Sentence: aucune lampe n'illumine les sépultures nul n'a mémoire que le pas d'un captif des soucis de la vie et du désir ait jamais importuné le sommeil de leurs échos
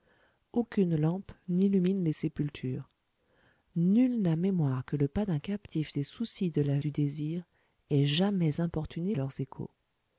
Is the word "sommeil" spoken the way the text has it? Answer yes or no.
no